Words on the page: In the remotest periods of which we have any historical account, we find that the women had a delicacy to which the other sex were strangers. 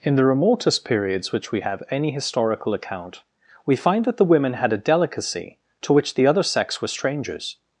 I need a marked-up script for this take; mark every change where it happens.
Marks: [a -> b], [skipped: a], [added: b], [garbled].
In the remotest periods [skipped: of] which we have any historical account, we find that the women had a delicacy to which the other sex were strangers.